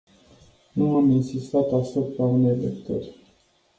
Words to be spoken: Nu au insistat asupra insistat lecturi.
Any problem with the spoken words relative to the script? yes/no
yes